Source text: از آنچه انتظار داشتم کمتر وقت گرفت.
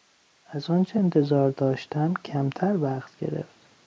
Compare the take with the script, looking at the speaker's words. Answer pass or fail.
pass